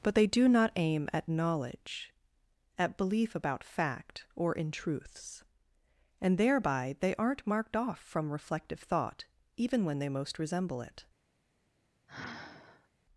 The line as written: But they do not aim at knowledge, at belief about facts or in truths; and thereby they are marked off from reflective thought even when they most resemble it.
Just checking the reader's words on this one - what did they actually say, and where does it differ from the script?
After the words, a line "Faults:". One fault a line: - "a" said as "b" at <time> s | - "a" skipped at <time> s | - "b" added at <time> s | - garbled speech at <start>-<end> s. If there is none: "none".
But they do not aim at knowledge, at belief about fact or in truths; and thereby they aren't marked off from reflective thought even when they most resemble it.
Faults:
- "facts" said as "fact" at 3.6 s
- "are" said as "aren't" at 7.1 s